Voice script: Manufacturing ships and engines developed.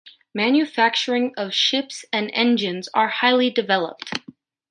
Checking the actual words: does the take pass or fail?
fail